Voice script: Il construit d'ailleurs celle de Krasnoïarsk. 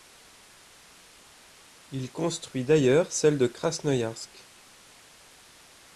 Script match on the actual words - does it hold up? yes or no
yes